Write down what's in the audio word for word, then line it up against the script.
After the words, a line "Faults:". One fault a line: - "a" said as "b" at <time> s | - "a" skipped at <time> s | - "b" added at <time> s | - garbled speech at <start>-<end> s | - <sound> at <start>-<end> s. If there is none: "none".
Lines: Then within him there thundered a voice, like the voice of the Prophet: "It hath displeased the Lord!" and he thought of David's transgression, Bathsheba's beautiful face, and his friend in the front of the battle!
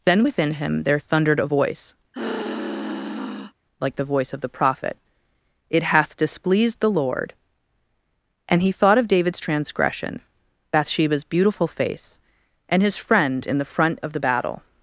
Then within him there thundered a voice, like the voice of the Prophet: "It hath displeased the Lord!" and he thought of David's transgression, Bathsheba's beautiful face, and his friend in the front of the battle!
Faults:
- sigh at 2.1-3.5 s